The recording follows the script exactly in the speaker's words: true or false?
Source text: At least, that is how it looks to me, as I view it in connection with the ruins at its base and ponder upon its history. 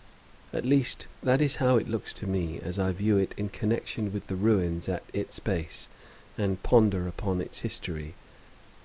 true